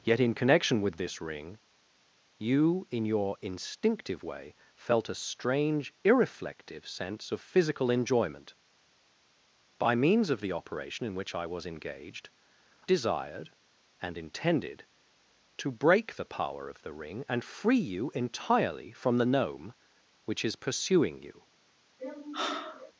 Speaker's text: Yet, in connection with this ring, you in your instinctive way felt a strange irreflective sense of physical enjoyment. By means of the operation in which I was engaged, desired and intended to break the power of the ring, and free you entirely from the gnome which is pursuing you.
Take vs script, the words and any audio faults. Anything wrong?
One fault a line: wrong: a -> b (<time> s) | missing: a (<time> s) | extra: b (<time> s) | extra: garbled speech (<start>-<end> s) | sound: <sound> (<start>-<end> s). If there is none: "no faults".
sound: sigh (22.0-22.9 s)